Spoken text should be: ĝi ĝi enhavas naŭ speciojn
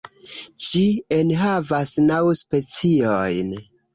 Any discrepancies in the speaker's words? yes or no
yes